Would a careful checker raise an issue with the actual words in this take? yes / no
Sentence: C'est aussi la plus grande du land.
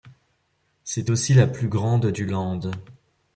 no